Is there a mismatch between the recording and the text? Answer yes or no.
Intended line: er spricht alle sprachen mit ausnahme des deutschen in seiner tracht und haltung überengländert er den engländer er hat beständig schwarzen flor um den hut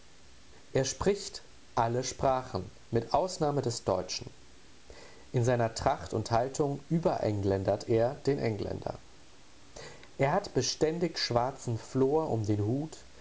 no